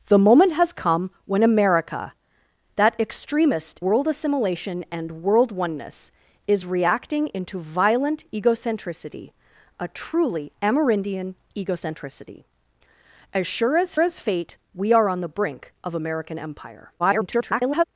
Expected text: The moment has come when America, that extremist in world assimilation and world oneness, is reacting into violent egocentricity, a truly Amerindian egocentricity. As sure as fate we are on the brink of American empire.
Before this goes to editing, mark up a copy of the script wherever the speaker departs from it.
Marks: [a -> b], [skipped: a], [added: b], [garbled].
The moment has come when America, that extremist [skipped: in] world assimilation and world oneness, is reacting into violent egocentricity, a truly Amerindian egocentricity. As sure as [added: as] fate we are on the brink of American empire. [garbled]